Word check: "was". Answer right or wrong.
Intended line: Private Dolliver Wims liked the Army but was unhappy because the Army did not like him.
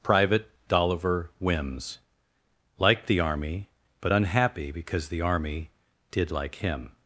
wrong